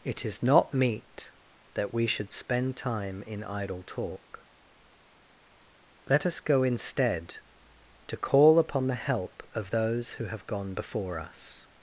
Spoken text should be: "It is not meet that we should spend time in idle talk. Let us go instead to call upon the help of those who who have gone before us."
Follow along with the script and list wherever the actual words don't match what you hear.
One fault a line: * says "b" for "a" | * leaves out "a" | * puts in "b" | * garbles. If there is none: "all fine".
* leaves out "who"